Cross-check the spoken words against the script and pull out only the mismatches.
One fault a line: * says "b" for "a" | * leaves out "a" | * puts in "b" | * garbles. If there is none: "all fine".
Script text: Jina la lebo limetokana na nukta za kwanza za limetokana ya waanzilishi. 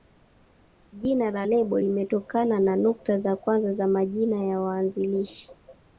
* says "majina" for "limetokana"